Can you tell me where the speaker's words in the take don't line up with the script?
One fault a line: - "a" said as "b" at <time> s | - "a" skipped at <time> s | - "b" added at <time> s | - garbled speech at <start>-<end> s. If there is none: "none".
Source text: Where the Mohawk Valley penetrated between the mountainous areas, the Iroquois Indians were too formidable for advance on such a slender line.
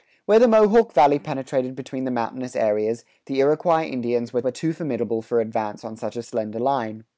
- "were" added at 4.4 s